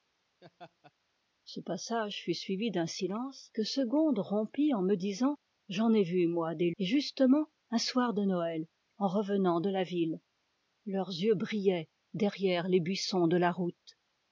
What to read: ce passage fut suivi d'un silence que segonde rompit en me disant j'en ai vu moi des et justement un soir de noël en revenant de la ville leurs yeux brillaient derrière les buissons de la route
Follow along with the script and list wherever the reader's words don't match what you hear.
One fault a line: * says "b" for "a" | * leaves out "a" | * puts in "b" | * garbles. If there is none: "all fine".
all fine